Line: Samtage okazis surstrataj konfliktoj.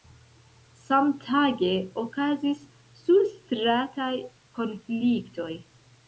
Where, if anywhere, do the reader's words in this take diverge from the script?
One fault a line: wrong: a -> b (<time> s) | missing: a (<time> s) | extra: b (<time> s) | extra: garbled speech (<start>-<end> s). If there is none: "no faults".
no faults